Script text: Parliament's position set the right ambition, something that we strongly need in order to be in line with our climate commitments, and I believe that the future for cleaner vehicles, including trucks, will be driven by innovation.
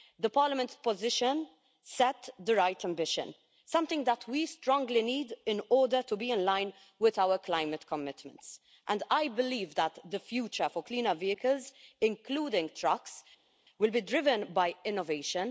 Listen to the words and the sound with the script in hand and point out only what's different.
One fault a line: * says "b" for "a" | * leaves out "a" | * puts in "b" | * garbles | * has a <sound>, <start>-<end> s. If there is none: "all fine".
all fine